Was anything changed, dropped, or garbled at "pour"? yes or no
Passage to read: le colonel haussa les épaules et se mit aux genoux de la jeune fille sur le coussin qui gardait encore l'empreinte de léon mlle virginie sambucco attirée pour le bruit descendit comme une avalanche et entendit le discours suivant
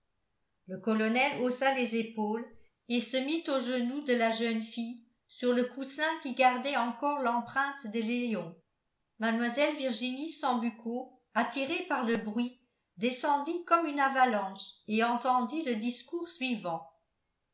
yes